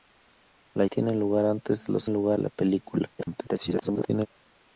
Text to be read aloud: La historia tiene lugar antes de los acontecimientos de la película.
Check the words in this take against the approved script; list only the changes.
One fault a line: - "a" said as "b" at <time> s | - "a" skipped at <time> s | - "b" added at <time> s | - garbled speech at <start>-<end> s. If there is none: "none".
- "historia" skipped at 0.8 s
- "acontecimientos" said as "lugar" at 2.1 s
- garbled speech at 3.2-4.3 s